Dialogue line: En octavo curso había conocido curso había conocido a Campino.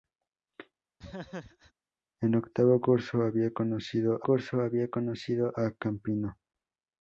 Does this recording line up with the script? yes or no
yes